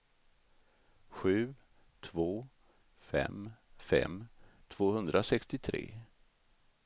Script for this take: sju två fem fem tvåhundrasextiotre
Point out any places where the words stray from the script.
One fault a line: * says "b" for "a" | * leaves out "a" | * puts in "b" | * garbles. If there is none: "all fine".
all fine